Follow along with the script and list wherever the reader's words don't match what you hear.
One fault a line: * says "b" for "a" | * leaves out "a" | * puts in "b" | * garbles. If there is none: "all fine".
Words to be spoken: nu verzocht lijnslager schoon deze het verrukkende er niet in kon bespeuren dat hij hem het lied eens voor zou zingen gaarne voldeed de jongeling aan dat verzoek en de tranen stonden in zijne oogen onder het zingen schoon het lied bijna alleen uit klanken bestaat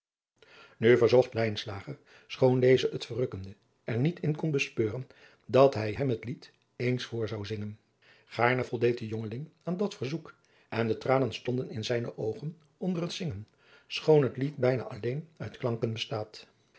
all fine